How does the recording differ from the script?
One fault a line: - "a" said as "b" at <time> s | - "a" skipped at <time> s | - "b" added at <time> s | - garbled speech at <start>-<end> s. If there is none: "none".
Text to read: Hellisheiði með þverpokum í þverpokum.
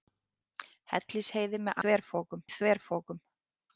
none